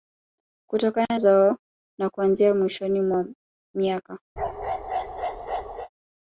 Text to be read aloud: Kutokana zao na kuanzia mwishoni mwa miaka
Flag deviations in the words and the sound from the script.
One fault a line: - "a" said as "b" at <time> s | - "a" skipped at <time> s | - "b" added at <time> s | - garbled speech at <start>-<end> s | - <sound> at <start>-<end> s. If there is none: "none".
- bark at 4.4-5.9 s